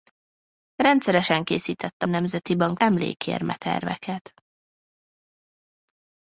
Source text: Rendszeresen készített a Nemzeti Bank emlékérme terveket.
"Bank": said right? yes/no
yes